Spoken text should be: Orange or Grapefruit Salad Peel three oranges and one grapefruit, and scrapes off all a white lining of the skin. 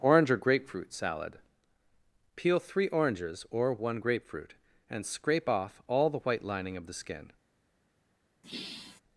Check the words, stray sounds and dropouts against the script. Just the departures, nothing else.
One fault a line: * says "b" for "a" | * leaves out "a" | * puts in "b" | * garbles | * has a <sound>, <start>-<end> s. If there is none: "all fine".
* says "or" for "and"
* says "scrape" for "scrapes"
* says "the" for "a"
* has a sigh, 8.4-9.0 s